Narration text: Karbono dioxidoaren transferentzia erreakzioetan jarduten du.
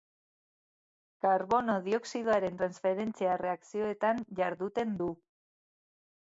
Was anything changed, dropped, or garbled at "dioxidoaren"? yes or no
no